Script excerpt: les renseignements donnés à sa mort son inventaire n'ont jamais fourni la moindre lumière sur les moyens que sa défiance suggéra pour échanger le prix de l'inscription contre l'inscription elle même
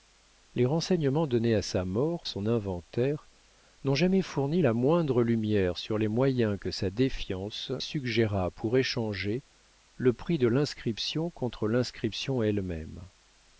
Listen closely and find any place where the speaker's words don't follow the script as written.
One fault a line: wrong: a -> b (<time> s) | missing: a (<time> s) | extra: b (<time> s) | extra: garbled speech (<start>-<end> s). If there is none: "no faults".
no faults